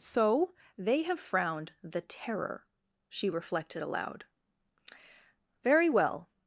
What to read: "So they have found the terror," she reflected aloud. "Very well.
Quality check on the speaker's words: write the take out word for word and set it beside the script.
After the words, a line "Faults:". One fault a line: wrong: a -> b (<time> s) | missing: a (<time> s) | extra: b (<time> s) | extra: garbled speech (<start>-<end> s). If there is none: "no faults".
"So they have frowned the terror," she reflected aloud. "Very well.
Faults:
wrong: found -> frowned (1.2 s)